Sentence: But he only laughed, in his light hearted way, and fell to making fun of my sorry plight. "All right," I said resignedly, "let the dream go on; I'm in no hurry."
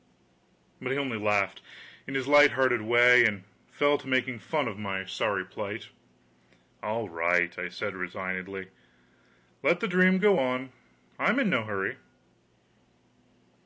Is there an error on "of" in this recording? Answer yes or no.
no